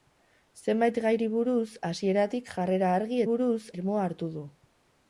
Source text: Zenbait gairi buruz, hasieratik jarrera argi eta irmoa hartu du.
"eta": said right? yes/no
no